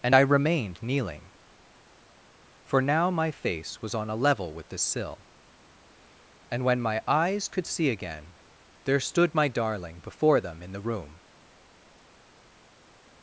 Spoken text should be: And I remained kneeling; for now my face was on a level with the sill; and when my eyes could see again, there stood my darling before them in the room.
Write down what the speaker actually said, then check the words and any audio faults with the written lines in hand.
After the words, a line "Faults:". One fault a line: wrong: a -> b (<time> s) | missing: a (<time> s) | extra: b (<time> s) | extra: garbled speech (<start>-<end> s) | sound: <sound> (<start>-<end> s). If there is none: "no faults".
And I remained kneeling; for now my face was on a level with the sill; and when my eyes could see again, there stood my darling before them in the room.
Faults:
no faults